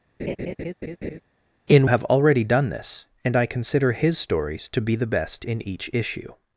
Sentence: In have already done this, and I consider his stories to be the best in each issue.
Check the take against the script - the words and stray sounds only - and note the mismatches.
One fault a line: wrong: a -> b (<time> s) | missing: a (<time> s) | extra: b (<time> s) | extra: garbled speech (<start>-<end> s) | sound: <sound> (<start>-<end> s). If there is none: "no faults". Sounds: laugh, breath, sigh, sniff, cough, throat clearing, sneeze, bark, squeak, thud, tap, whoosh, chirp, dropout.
sound: laugh (0.2-1.2 s)